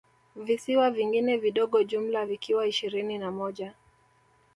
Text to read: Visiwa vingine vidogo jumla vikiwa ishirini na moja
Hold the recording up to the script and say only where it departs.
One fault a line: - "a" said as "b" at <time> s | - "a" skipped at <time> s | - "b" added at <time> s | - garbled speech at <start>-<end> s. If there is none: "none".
none